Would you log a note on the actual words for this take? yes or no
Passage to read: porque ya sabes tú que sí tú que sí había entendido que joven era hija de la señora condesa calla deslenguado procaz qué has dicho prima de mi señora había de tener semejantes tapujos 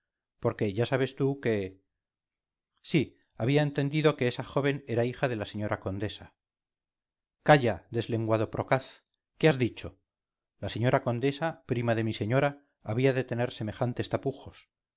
yes